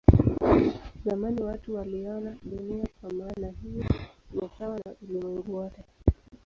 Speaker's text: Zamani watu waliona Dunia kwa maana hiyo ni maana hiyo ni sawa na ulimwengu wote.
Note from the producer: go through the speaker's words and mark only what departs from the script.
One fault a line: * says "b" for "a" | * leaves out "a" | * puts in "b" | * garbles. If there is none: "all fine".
* leaves out "maana hiyo ni"